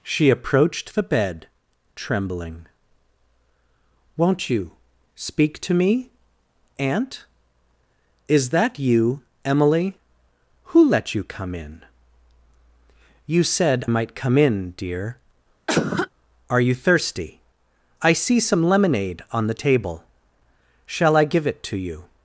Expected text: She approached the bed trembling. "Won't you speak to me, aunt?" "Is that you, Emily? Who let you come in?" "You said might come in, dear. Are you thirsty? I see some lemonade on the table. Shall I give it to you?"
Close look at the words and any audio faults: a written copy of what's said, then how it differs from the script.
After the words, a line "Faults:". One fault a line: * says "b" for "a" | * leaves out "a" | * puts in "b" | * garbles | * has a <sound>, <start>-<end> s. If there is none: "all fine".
She approached the bed trembling. "Won't you speak to me, aunt?" "Is that you, Emily? Who let you come in?" "You said might come in, dear. Are you thirsty? I see some lemonade on the table. Shall I give it to you?"
Faults:
* has a cough, 15.7-16.1 s